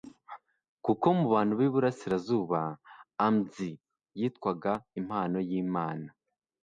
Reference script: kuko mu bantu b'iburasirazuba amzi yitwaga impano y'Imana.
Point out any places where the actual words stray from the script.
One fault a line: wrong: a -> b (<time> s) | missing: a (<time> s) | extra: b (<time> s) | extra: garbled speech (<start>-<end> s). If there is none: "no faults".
no faults